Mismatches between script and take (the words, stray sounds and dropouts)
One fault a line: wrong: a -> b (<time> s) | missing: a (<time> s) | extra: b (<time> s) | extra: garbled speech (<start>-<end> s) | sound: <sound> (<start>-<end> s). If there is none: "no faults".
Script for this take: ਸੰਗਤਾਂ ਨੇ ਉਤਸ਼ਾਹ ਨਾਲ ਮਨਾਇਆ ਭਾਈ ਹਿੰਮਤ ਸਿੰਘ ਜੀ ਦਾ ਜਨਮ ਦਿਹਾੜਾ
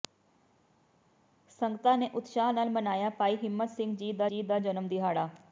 extra: ਜੀ ਦਾ (4.2 s)